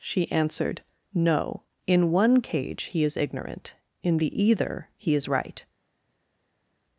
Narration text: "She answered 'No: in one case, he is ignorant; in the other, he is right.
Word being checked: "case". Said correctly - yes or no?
no